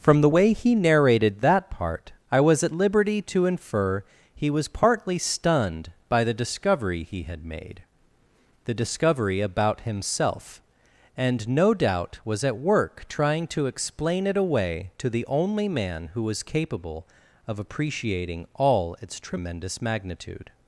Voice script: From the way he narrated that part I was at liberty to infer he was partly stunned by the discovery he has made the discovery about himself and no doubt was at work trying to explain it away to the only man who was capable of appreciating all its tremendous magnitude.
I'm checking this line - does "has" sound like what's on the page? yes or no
no